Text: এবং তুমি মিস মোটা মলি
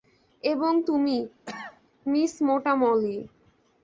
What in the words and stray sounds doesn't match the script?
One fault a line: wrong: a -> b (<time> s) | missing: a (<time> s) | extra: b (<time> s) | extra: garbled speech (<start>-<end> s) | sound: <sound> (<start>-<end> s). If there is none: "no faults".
sound: cough (1.5-1.8 s)